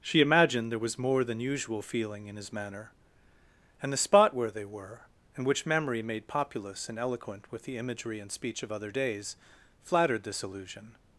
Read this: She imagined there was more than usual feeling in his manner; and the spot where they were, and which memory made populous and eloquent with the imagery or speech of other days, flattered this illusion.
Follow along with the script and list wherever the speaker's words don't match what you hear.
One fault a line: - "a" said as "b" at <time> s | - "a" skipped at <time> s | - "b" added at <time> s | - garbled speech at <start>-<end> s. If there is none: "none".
- "or" said as "and" at 8.2 s